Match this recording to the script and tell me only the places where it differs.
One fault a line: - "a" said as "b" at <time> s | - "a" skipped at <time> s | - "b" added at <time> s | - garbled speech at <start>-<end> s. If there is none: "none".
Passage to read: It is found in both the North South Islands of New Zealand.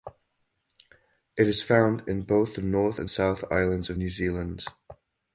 - "and" added at 3.0 s